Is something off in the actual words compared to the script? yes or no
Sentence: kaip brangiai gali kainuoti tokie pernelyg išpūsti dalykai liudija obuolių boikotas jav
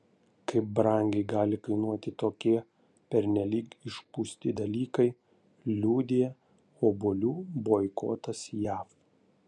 no